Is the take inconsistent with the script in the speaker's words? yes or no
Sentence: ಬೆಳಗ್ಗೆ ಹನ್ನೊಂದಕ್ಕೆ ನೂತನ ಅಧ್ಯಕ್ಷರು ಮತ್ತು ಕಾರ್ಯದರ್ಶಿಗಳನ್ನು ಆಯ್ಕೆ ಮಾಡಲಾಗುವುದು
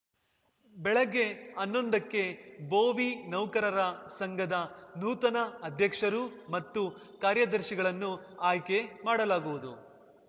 yes